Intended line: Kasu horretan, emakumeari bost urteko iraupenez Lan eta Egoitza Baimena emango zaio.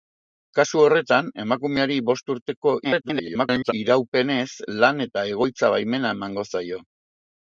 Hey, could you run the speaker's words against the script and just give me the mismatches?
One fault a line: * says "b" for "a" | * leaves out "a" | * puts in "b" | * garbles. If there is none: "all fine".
* garbles